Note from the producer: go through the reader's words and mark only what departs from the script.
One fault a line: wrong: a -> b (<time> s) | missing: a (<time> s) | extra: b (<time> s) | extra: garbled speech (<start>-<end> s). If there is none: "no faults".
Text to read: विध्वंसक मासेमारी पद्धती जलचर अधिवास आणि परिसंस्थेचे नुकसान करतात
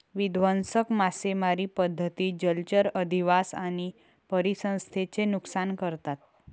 no faults